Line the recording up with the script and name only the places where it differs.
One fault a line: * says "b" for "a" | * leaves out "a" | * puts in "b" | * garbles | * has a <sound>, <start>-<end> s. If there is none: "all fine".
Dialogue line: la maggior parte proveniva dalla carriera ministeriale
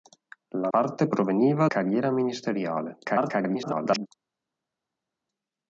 * leaves out "maggior"
* leaves out "dalla"
* garbles